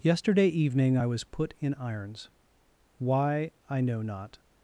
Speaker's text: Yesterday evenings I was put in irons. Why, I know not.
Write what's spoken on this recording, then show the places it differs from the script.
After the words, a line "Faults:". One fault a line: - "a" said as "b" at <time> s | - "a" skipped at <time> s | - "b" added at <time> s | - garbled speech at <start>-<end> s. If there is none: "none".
Yesterday evening I was put in irons. Why, I know not.
Faults:
- "evenings" said as "evening" at 0.5 s